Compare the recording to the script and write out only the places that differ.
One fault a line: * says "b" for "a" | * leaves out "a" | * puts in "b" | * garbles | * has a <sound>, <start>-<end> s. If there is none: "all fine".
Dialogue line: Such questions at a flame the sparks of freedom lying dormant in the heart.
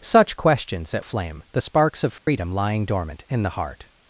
* has a dropout, 2.2-2.3 s